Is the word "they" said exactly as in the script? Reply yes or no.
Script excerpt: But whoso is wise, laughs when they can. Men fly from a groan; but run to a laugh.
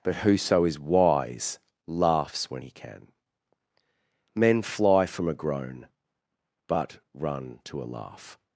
no